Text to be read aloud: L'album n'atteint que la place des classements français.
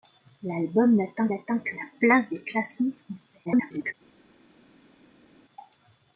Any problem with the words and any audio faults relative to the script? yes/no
yes